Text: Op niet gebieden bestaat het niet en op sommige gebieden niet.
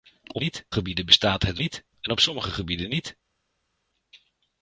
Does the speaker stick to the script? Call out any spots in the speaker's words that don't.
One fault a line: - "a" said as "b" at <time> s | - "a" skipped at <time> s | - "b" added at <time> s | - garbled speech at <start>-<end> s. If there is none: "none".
none